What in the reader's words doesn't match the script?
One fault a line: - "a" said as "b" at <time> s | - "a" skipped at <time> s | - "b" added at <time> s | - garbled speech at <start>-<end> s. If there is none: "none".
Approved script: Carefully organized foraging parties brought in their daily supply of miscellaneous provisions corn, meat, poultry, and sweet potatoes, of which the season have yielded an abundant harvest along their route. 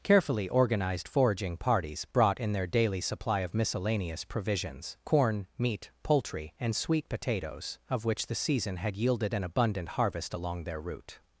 - "have" said as "had" at 8.8 s